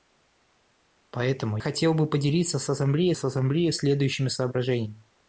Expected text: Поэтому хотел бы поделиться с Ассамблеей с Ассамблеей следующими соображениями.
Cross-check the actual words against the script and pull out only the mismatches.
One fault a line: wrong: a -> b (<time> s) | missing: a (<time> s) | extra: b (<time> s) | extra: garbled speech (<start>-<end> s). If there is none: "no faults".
no faults